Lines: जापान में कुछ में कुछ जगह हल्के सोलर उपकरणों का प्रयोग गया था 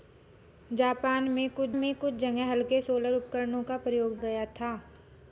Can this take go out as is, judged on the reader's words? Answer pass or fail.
pass